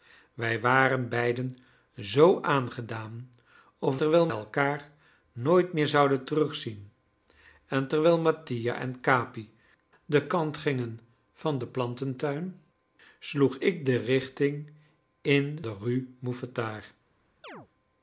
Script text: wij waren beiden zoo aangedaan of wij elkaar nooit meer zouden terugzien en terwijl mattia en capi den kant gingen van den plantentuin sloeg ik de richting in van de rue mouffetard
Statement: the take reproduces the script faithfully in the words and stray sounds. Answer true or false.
false